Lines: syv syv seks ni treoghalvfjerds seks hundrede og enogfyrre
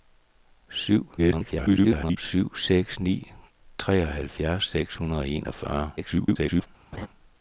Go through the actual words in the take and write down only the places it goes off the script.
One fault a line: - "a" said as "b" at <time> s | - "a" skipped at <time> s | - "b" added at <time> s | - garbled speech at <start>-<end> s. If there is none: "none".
- garbled speech at 1.2-2.2 s
- garbled speech at 6.0-6.7 s